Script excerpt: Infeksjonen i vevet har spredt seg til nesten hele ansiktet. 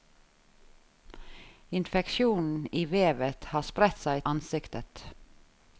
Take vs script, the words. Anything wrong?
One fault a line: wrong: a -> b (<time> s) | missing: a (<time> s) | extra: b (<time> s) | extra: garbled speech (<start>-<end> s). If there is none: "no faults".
missing: til nesten hele (4.2 s)